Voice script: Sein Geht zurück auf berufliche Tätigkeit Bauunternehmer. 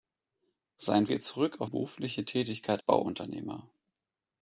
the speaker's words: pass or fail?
pass